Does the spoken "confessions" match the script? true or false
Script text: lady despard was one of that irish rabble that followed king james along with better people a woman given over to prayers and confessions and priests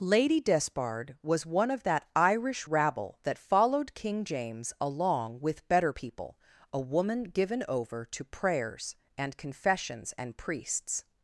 true